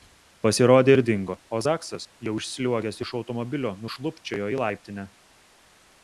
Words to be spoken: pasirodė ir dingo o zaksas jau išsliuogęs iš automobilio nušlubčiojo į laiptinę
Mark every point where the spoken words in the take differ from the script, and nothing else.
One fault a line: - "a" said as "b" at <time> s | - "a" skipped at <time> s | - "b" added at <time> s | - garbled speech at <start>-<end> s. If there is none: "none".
none